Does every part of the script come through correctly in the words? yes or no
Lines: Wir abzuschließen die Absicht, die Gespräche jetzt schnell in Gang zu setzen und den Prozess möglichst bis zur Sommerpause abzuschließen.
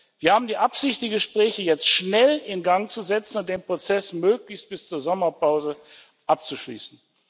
no